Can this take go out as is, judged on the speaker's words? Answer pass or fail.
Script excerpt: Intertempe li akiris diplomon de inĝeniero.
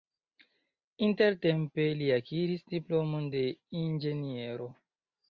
pass